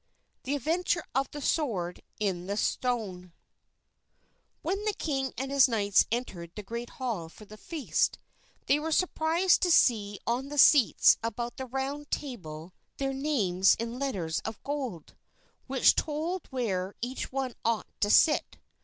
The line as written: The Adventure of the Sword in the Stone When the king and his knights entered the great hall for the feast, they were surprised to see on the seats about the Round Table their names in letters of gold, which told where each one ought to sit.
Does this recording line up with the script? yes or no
yes